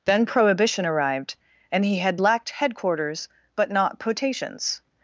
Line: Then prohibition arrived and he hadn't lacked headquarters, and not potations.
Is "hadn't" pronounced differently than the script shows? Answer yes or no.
yes